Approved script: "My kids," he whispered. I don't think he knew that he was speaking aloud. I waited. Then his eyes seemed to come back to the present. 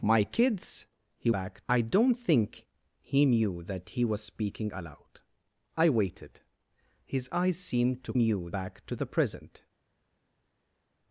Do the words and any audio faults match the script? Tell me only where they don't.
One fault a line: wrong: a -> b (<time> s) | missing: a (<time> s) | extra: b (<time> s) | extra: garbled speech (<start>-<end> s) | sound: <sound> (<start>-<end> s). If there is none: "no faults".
wrong: whispered -> back (1.3 s)
missing: Then (6.4 s)
wrong: come -> knew (8.1 s)